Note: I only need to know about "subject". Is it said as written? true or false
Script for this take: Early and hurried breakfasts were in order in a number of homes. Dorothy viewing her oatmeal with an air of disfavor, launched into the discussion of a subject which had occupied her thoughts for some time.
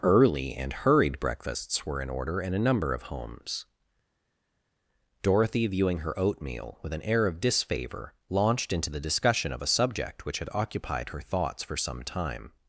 true